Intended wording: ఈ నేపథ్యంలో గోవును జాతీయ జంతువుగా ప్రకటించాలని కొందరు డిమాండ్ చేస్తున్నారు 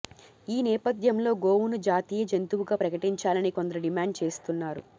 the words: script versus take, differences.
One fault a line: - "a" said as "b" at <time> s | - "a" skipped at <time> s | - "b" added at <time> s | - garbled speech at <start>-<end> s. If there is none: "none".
none